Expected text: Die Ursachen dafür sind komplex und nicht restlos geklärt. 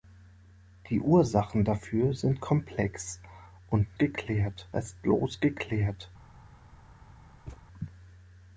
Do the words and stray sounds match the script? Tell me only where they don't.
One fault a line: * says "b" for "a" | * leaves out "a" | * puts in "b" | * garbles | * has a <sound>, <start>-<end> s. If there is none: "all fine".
* says "geklärt" for "nicht"
* has a thud, 7.5-7.6 s